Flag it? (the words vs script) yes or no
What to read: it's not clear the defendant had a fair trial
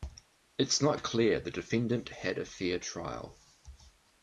no